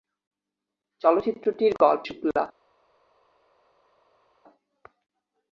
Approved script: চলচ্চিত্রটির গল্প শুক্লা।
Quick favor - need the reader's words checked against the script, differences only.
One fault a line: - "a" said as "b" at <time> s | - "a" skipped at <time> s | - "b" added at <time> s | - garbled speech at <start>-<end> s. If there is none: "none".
none